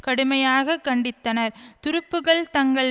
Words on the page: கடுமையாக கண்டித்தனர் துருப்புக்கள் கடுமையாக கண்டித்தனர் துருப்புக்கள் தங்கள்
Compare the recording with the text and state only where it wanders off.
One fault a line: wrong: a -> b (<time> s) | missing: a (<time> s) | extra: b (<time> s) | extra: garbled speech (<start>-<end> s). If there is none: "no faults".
missing: கடுமையாக கண்டித்தனர் துருப்புக்கள் (2.4 s)